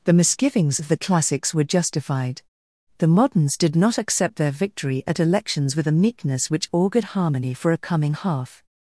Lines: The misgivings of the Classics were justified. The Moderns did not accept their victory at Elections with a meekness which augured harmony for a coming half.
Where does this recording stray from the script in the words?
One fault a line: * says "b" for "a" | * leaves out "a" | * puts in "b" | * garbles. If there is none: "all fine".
all fine